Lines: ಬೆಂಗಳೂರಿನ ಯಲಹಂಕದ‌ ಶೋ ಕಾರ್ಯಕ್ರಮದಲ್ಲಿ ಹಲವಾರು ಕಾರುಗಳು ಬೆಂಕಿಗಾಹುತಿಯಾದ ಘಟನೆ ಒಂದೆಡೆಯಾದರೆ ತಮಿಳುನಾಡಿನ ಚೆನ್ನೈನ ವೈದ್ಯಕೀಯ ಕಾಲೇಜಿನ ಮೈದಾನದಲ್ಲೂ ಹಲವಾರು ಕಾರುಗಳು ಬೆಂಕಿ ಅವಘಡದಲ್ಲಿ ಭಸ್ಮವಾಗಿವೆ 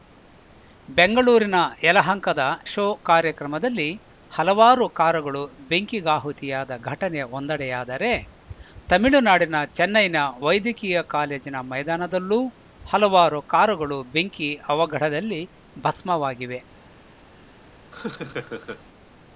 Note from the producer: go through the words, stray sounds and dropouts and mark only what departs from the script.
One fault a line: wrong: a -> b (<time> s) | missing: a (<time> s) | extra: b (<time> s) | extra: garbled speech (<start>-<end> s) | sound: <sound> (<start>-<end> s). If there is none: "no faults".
sound: laugh (17.9-18.8 s)